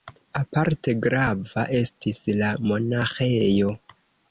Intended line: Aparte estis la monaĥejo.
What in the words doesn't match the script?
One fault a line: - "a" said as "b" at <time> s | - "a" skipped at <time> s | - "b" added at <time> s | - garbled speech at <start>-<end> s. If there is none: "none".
- "grava" added at 1.1 s